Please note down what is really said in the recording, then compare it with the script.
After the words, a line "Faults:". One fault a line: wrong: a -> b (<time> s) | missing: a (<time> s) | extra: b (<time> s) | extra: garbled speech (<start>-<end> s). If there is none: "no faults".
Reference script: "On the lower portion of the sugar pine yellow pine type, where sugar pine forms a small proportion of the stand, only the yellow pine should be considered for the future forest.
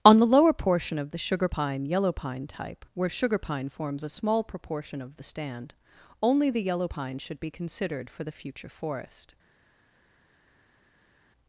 "On the lower portion of the sugar pine yellow pine type, where sugar pine forms a small proportion of the stand, only the yellow pine should be considered for the future forest.
Faults:
no faults